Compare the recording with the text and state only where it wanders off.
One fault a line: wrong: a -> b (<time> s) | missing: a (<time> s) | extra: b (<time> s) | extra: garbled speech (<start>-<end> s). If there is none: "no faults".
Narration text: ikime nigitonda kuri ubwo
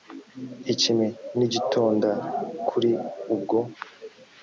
no faults